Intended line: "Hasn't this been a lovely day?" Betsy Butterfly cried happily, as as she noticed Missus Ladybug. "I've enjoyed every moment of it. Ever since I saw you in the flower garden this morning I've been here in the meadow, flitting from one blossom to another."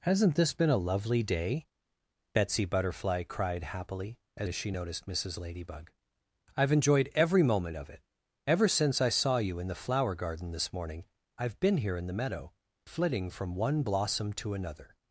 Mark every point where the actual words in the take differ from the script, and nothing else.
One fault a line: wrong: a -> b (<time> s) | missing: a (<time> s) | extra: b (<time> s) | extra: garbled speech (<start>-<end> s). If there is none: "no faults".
no faults